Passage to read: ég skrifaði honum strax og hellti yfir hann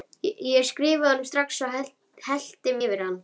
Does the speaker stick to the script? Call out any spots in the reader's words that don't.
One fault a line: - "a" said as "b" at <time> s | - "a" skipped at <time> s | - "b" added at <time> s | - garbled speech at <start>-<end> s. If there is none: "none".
none